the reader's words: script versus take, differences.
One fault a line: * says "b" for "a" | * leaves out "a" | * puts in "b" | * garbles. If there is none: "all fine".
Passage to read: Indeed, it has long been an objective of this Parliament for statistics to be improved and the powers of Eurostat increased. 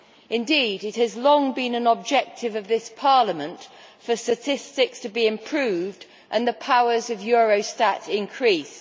all fine